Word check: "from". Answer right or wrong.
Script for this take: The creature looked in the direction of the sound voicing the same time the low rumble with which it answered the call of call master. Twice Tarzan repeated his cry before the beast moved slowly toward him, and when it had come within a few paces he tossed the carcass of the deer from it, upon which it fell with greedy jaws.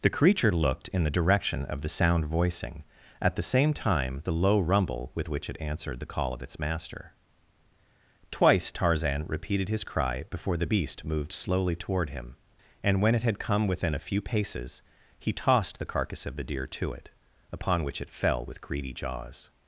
wrong